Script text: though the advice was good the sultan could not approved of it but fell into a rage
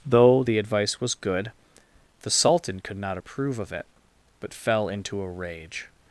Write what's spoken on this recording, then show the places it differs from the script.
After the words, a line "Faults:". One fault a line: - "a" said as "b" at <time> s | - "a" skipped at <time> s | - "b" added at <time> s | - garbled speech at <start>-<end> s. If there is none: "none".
though the advice was good the sultan could not approve of it but fell into a rage
Faults:
- "approved" said as "approve" at 3.1 s